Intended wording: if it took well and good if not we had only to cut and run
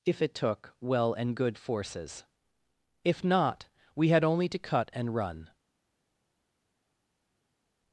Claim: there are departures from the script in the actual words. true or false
true